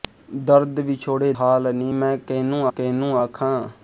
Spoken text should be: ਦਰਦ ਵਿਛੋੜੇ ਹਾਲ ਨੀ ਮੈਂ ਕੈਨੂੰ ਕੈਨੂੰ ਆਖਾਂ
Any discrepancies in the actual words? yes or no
no